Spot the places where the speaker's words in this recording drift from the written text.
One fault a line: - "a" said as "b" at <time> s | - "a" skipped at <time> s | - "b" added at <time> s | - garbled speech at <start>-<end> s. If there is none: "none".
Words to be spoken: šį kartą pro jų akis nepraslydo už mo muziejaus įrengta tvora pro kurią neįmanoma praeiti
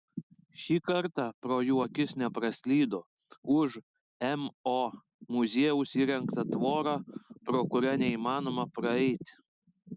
none